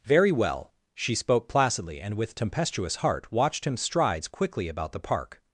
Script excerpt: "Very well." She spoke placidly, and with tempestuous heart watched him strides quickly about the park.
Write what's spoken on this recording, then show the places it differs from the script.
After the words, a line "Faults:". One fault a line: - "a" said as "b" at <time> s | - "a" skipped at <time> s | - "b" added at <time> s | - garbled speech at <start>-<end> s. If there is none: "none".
"Very well." She spoke placidly, and with tempestuous heart watched him strides quickly about the park.
Faults:
none